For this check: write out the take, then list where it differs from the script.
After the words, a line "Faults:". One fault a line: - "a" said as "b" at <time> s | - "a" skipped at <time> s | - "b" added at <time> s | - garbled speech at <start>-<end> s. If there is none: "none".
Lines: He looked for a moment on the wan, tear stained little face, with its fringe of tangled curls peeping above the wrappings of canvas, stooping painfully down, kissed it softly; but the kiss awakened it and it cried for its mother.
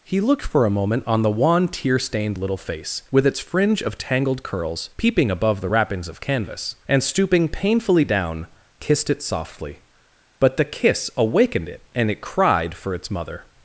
He looked for a moment on the wan, tear stained little face, with its fringe of tangled curls peeping above the wrappings of canvas, and stooping painfully down, kissed it softly; but the kiss awakened it and it cried for its mother.
Faults:
- "and" added at 6.9 s